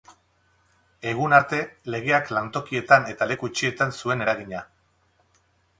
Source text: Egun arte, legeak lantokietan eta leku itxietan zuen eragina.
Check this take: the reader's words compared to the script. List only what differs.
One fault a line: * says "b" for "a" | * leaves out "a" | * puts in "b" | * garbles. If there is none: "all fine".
all fine